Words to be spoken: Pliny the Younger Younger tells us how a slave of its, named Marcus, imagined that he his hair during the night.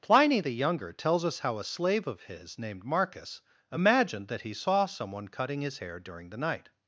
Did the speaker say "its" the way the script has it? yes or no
no